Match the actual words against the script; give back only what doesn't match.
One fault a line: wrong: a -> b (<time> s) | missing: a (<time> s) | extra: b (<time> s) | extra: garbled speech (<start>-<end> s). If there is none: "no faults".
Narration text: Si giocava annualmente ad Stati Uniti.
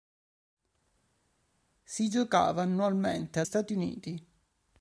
no faults